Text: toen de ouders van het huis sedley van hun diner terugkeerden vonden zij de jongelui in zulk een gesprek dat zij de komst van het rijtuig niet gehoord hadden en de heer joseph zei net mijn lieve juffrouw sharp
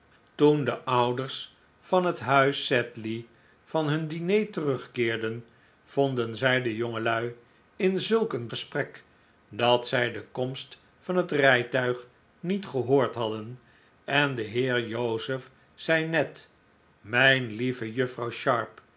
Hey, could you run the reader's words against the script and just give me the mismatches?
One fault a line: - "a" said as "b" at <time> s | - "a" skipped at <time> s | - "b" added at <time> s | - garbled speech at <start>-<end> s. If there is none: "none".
none